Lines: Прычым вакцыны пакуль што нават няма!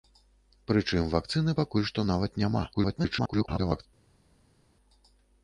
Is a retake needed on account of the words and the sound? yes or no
yes